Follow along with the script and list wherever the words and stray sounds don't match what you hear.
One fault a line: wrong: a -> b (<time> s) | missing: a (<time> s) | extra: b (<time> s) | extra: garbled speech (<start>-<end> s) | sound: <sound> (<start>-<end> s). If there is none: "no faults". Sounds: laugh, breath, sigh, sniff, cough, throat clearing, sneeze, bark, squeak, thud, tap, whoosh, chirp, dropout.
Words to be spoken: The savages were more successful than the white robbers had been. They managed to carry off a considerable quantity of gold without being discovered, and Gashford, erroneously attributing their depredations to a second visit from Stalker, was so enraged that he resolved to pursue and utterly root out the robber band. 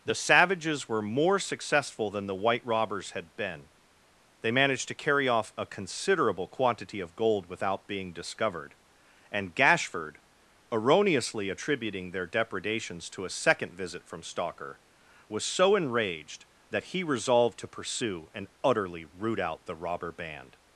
no faults